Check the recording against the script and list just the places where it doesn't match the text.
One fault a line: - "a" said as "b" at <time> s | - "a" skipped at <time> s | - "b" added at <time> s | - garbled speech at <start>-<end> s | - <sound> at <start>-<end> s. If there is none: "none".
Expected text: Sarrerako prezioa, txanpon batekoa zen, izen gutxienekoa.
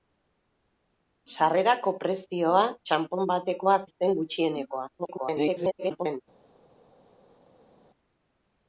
- "zen" skipped at 3.8 s
- garbled speech at 5.0-6.2 s